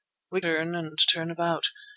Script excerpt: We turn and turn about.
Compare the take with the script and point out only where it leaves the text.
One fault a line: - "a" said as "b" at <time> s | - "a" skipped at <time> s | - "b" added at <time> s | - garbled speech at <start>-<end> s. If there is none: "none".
none